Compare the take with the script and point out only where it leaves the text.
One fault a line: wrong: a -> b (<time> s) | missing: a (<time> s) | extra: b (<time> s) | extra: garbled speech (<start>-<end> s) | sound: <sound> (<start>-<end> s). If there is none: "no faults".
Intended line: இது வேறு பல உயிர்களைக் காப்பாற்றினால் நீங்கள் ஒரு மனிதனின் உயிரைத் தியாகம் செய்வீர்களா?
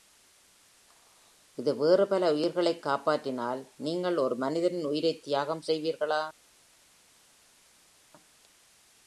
no faults